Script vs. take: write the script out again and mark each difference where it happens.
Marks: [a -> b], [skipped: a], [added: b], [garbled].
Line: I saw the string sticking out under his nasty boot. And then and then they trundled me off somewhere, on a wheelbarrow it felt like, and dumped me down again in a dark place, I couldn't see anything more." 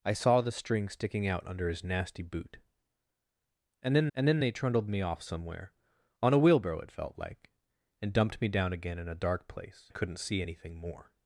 I saw the string sticking out under his nasty boot. And then and then they trundled me off somewhere, on a wheelbarrow it felt like, and dumped me down again in a dark place, I couldn't see anything more."